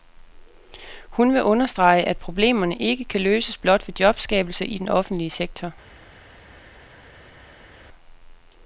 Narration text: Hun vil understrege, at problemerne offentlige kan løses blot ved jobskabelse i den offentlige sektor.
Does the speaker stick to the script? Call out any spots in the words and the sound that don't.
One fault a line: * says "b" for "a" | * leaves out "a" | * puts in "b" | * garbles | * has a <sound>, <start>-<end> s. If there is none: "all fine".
* says "ikke" for "offentlige"